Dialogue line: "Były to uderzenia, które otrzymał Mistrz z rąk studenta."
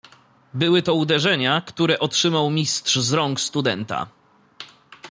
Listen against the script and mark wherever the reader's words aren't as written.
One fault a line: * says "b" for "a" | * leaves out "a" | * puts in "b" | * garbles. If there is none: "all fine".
all fine